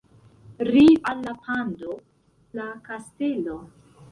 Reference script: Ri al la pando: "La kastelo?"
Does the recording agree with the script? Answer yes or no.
yes